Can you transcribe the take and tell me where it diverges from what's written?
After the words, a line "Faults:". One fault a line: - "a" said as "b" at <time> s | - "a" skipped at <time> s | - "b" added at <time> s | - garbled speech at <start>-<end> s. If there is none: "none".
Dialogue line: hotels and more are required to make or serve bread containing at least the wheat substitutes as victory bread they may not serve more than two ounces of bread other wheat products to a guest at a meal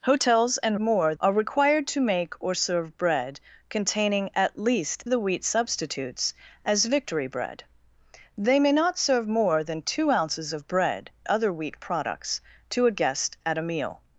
hotels and more are required to make or serve bread containing at least the wheat substitutes as victory bread they may not serve more than two ounces of bread other wheat products to a guest at a meal
Faults:
none